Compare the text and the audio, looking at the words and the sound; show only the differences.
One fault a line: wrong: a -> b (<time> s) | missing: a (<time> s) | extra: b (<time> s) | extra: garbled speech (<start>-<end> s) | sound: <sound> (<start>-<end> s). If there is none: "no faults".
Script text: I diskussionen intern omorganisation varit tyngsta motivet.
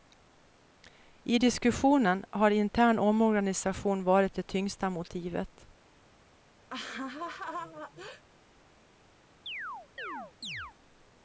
extra: har (2.3 s)
extra: det (4.3 s)
sound: laugh (6.7-8.2 s)
sound: chirp (9.5-10.7 s)